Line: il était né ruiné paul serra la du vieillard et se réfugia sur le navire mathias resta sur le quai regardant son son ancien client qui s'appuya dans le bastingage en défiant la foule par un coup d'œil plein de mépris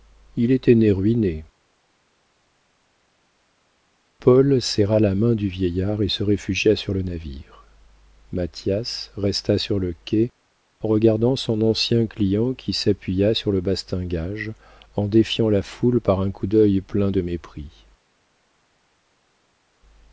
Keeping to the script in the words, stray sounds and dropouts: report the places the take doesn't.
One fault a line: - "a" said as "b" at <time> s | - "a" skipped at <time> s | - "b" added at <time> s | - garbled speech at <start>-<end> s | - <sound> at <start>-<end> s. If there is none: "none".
- "main" added at 5.1 s
- "son" skipped at 11.6 s
- "dans" said as "sur" at 13.3 s